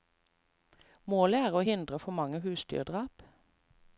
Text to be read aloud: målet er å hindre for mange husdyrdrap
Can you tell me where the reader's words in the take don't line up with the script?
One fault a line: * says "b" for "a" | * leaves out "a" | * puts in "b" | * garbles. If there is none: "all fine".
all fine